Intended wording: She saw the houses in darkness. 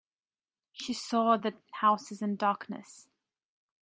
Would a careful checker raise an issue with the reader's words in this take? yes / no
no